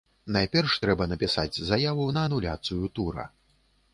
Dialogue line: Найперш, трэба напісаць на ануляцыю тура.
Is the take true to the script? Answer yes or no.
no